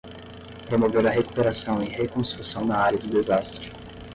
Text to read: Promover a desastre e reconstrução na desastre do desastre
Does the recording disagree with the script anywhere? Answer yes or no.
yes